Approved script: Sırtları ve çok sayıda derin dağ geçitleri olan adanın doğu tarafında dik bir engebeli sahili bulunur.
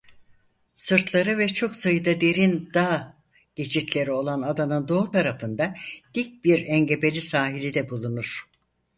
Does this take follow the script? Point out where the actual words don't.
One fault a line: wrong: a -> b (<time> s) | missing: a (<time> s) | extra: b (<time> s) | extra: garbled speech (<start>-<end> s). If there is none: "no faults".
extra: de (7.7 s)